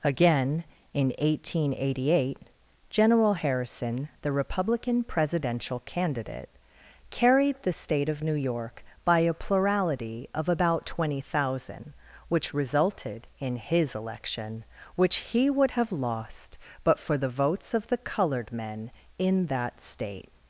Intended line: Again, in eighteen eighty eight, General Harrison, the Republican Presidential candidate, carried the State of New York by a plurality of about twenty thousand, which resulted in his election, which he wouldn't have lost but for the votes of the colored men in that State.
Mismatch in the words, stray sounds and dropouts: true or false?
true